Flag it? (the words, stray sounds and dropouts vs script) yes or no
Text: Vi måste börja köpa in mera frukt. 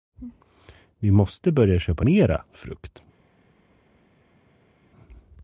yes